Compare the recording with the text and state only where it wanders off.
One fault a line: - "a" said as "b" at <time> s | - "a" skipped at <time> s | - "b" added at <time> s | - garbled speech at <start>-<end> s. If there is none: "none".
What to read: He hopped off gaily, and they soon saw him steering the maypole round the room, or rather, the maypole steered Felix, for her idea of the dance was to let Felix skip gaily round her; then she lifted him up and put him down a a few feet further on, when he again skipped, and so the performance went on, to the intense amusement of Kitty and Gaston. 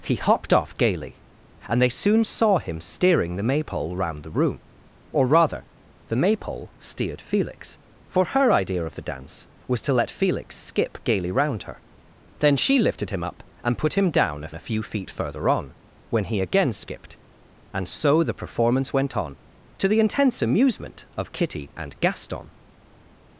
none